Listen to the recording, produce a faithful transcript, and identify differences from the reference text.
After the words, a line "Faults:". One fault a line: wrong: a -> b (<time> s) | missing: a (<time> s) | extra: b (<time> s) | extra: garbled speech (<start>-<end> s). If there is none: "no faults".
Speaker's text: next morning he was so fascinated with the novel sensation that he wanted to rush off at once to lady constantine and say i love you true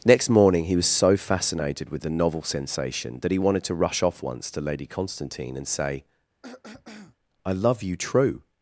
next morning he was so fascinated with the novel sensation that he wanted to rush off once to lady constantine and say i love you true
Faults:
missing: at (4.2 s)